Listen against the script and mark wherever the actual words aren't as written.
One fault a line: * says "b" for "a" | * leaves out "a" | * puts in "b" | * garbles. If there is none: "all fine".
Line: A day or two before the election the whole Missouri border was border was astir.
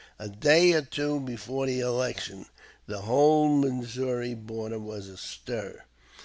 * leaves out "border was"